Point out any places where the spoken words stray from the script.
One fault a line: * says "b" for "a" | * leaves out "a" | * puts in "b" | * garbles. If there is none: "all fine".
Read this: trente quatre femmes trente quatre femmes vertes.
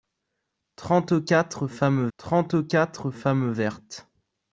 all fine